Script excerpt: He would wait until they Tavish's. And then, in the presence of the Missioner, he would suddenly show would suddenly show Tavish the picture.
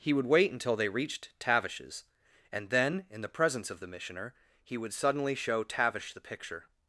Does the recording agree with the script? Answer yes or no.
no